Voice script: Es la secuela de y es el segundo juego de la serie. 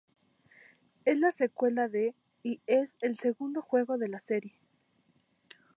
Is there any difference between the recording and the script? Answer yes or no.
no